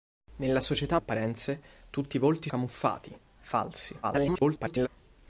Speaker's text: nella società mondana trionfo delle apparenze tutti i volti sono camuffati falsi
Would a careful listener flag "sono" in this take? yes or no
yes